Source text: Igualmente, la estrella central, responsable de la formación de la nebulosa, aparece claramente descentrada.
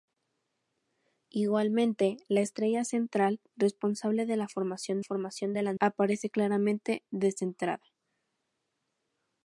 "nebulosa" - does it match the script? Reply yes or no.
no